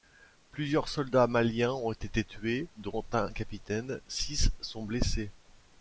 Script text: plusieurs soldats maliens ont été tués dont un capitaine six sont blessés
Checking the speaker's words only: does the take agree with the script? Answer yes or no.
yes